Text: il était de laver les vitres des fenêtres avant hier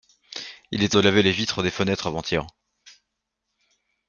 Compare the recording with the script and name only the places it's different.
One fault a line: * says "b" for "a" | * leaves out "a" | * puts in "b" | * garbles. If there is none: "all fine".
all fine